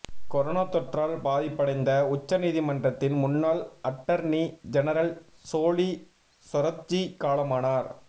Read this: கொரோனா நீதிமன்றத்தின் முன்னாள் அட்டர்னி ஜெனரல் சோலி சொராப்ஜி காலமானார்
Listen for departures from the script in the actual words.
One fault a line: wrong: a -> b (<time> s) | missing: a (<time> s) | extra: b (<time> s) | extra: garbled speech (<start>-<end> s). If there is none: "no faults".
extra: தொற்றால் பாதிப்படைந்த உச்ச (0.7 s)